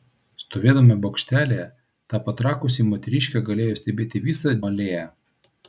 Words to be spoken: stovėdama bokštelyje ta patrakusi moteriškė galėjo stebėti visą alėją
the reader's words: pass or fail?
pass